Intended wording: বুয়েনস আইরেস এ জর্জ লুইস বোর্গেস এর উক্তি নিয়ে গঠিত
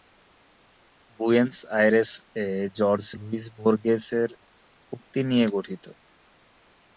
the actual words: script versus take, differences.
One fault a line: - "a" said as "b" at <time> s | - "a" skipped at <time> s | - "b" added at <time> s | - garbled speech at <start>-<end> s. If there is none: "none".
none